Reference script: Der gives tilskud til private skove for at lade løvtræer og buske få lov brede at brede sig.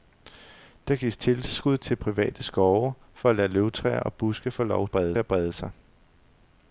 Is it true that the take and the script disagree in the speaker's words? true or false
false